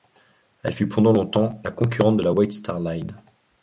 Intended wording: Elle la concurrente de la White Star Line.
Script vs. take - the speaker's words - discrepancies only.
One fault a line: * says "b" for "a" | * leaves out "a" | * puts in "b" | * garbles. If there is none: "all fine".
* puts in "fut pendant longtemps"